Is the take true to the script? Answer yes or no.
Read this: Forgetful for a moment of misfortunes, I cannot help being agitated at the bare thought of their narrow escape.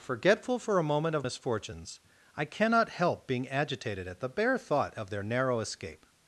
yes